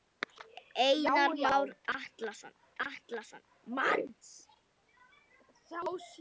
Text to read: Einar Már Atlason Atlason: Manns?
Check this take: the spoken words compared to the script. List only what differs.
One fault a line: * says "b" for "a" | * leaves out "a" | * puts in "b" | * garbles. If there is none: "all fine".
all fine